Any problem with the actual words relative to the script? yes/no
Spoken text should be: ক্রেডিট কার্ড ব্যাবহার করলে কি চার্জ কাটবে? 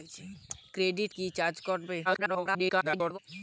yes